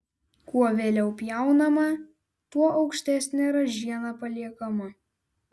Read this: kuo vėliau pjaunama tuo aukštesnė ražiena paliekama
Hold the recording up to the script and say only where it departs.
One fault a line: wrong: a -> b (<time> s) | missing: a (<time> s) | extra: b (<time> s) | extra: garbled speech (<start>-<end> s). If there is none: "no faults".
no faults